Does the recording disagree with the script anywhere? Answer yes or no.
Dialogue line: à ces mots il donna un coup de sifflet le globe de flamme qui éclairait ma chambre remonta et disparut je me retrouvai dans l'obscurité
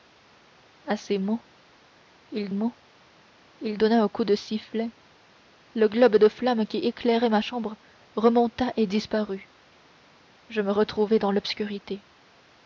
yes